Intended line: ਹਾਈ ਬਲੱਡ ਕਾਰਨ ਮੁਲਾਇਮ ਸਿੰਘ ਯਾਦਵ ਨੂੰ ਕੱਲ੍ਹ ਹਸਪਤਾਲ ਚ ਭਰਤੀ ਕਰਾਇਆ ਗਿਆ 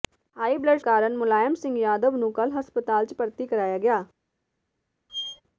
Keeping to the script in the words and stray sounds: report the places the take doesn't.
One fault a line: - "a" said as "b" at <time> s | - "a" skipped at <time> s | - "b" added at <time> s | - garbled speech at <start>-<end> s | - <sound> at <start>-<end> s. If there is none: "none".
- squeak at 5.1-5.4 s